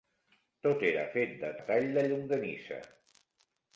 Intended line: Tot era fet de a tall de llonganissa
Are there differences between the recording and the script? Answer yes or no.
no